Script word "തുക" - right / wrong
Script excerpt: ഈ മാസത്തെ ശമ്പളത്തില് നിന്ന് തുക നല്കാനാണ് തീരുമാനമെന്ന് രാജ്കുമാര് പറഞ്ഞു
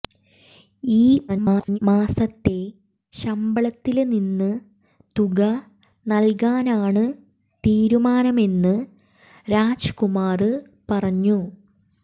right